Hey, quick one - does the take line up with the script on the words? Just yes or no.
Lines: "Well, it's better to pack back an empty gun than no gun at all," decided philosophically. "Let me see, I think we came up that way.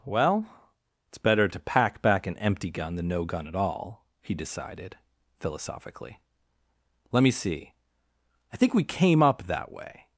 no